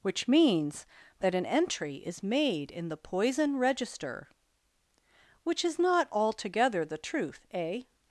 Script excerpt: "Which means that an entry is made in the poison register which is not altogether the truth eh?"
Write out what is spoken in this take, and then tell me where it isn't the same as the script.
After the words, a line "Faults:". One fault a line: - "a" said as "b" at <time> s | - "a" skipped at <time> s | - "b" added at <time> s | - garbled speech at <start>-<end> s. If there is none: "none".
"Which means that an entry is made in the poison register which is not altogether the truth eh?"
Faults:
none